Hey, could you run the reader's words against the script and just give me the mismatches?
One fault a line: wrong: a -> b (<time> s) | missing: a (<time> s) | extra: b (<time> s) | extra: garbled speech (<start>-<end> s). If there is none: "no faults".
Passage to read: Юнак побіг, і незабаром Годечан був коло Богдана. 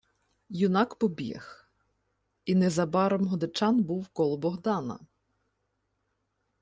no faults